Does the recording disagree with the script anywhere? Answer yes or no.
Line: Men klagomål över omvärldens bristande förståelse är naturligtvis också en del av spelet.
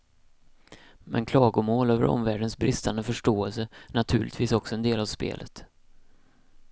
no